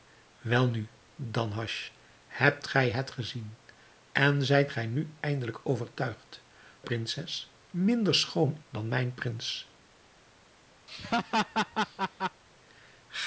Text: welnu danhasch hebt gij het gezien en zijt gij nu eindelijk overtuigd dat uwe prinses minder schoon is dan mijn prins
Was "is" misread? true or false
true